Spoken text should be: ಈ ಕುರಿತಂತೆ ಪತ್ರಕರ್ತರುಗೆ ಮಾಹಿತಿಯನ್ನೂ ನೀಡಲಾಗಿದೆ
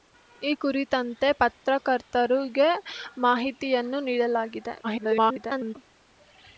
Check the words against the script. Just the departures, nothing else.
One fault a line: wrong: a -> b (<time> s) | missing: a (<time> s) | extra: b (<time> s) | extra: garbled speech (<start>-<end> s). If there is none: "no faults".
extra: garbled speech (4.8-5.8 s)